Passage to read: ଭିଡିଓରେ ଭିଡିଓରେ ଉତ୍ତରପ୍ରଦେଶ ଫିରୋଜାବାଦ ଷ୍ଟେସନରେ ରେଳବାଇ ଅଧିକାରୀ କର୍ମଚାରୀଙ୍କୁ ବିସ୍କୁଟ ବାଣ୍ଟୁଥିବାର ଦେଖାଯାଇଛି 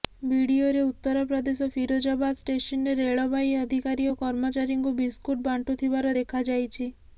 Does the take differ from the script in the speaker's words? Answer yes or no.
yes